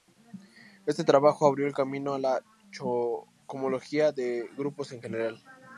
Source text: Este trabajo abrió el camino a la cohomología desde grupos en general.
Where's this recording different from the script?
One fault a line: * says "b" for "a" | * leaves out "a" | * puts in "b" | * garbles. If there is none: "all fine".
* says "de" for "desde"